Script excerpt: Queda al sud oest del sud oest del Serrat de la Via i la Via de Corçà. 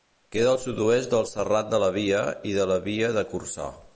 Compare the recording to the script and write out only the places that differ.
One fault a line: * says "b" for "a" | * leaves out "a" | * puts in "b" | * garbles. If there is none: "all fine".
* leaves out "sud oest del"
* puts in "de"